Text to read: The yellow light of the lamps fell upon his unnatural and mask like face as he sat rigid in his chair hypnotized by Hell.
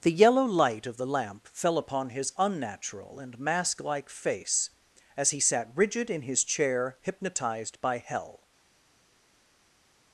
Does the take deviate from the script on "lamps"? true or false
true